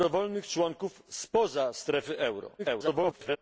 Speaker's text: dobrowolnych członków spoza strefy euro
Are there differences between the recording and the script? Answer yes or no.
yes